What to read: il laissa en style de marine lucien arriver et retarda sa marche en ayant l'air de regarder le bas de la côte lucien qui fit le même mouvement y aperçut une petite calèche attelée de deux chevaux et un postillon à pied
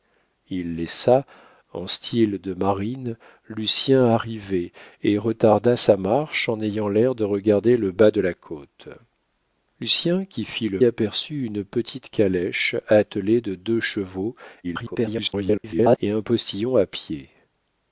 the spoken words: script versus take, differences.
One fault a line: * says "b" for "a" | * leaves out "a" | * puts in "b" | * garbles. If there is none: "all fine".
* leaves out "même mouvement y"
* garbles